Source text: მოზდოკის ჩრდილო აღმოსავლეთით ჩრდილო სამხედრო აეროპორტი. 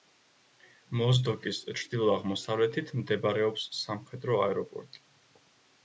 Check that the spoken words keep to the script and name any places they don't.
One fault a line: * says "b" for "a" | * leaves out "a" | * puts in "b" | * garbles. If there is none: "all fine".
* says "მდებარეობს" for "ჩრდილო"